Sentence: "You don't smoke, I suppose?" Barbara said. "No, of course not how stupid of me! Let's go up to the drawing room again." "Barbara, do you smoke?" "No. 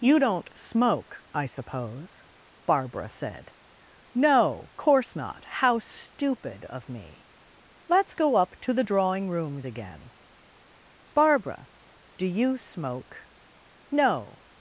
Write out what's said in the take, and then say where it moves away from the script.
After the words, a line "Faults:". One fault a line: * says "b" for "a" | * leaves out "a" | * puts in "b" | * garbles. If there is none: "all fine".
"You don't smoke, I suppose?" Barbara said. "No, course not how stupid of me! Let's go up to the drawing rooms again." "Barbara, do you smoke?" "No.
Faults:
* leaves out "of"
* says "rooms" for "room"